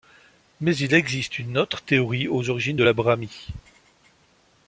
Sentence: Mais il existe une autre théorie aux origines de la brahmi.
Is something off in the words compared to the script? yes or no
no